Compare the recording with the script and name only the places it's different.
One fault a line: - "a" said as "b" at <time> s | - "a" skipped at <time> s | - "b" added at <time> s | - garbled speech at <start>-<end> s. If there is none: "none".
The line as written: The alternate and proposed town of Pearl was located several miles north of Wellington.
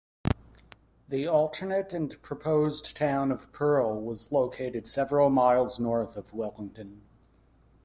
none